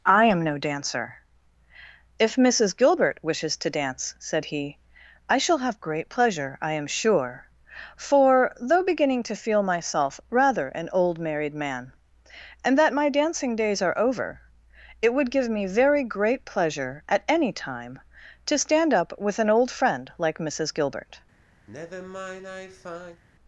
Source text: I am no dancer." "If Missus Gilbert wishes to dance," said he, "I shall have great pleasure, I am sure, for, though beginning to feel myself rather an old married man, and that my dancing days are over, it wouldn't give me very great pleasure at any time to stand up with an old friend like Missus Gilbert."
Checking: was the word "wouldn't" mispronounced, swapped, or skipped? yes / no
yes